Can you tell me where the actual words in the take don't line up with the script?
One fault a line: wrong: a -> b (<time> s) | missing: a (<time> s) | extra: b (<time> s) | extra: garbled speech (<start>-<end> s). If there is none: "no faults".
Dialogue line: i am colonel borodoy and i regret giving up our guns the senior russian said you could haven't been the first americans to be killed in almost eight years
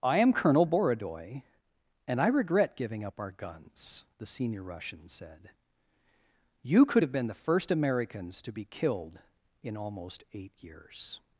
wrong: haven't -> have (7.0 s)